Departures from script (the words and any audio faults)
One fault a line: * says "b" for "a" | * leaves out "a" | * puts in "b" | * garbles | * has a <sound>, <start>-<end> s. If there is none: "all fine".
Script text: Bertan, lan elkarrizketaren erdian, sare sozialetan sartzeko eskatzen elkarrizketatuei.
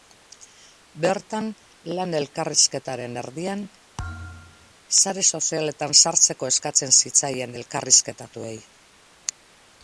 * has a thud, 4.0-4.7 s
* puts in "zitzaien"